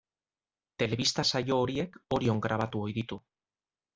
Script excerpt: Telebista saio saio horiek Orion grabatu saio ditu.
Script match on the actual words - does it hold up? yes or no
no